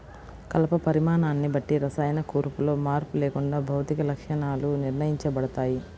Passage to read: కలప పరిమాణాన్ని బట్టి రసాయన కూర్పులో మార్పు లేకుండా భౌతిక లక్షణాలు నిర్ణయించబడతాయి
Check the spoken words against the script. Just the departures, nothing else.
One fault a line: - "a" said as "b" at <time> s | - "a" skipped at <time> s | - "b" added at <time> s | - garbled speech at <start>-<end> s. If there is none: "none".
none